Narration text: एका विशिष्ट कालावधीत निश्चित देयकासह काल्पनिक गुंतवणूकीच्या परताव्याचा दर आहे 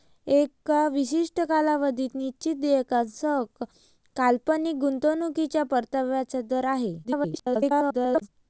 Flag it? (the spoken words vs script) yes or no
yes